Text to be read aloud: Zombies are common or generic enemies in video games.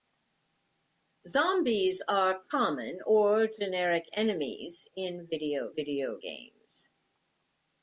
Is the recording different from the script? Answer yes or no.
yes